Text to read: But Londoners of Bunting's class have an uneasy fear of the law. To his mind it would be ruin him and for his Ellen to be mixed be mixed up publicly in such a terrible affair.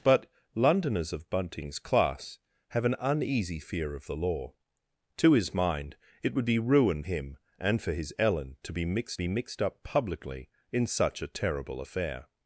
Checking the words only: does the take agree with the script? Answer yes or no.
yes